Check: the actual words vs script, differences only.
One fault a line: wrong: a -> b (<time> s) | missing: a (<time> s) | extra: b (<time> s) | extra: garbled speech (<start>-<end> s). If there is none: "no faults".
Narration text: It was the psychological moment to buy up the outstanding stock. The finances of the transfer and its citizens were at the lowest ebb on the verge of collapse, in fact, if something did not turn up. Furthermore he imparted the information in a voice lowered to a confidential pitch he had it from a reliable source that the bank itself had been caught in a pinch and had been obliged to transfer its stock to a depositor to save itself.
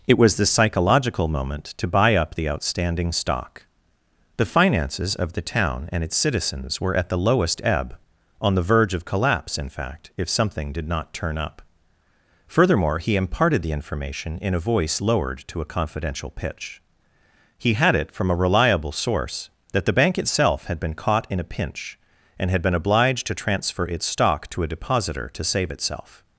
wrong: transfer -> town (5.4 s)